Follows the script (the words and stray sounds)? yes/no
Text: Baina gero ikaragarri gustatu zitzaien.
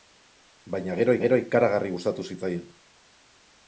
no